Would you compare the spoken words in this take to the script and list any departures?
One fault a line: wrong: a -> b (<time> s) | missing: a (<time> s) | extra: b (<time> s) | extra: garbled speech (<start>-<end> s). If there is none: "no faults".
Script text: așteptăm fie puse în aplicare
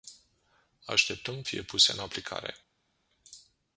no faults